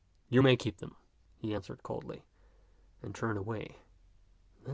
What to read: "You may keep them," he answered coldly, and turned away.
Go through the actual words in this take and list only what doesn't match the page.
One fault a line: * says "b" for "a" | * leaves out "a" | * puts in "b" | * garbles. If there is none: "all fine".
all fine